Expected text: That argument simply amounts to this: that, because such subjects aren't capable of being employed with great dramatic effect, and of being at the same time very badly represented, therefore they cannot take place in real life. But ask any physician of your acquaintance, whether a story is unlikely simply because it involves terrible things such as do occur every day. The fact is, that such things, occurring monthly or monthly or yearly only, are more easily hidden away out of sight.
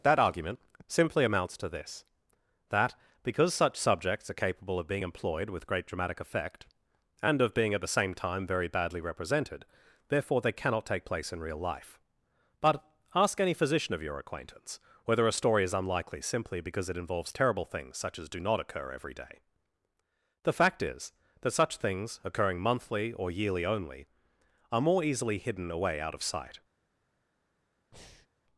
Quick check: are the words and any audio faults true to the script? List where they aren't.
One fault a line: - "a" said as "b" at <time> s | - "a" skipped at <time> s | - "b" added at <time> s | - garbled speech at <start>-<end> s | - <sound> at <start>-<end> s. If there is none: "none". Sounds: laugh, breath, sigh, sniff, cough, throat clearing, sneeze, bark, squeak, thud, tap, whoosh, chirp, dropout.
- "aren't" said as "are" at 4.3 s
- "not" added at 18.4 s
- "monthly or" skipped at 23.3 s
- breath at 27.9-28.3 s